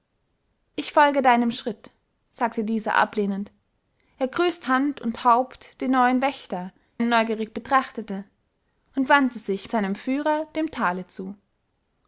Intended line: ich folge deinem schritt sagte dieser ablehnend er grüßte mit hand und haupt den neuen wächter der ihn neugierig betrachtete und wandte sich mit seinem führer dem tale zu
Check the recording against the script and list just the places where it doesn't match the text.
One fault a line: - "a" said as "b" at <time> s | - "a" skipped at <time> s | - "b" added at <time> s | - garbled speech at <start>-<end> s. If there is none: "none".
- "mit" skipped at 4.7 s
- "der" skipped at 6.7 s
- "mit" skipped at 9.7 s